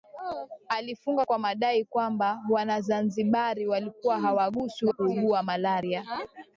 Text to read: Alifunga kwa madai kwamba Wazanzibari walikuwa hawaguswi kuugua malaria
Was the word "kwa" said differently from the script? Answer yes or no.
no